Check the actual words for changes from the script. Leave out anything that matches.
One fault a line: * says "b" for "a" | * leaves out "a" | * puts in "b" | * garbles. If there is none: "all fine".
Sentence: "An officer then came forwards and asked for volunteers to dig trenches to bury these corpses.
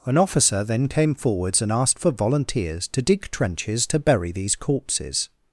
all fine